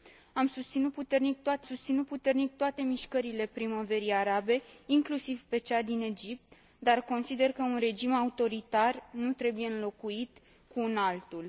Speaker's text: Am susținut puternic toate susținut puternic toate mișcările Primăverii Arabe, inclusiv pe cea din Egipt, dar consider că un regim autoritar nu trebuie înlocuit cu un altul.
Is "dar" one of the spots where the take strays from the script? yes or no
no